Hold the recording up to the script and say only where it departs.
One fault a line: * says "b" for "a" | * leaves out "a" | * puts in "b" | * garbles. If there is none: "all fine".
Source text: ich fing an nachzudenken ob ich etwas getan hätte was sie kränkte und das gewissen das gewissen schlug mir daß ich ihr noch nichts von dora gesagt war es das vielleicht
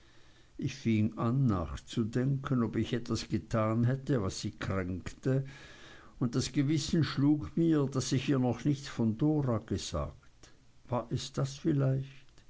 * leaves out "das gewissen"